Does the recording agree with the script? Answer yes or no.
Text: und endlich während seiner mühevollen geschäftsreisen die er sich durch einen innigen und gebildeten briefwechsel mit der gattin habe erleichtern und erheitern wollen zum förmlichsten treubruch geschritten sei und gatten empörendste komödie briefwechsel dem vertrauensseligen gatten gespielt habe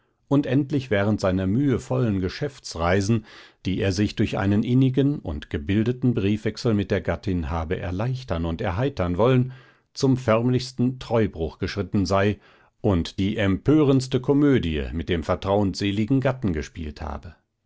no